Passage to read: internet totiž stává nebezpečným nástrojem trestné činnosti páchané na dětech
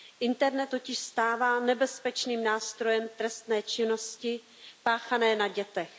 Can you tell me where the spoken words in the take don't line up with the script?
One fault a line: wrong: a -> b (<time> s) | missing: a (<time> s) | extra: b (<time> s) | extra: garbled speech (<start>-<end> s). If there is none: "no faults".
no faults